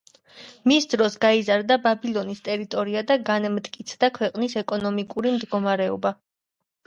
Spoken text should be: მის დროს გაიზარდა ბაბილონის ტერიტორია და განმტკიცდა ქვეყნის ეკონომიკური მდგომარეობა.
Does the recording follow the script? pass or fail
pass